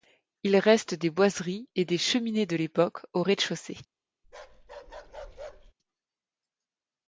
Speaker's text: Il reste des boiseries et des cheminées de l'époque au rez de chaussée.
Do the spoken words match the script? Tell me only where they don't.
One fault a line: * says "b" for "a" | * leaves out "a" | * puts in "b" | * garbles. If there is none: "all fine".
all fine